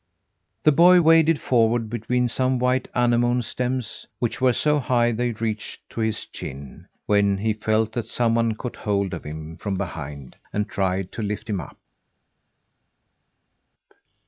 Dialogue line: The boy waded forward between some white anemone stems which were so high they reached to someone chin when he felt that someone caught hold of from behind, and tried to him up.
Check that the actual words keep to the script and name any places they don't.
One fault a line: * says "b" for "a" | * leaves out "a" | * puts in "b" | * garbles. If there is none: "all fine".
* says "his" for "someone"
* puts in "him"
* puts in "lift"